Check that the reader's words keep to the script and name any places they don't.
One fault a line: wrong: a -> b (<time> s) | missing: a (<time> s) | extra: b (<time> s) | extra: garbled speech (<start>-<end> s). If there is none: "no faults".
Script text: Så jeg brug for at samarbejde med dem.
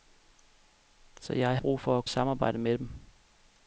no faults